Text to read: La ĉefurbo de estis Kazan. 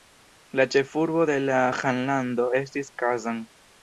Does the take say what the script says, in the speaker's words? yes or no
no